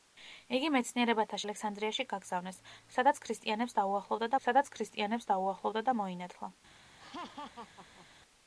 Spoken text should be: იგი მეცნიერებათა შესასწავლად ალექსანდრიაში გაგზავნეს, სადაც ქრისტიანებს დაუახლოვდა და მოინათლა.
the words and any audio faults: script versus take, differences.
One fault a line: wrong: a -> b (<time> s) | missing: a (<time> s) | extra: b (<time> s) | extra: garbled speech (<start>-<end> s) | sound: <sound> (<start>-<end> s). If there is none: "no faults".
missing: შესასწავლად (1.4 s)
extra: სადაც ქრისტიანებს დაუახლოვდა (4.5 s)
sound: laugh (7.0-8.1 s)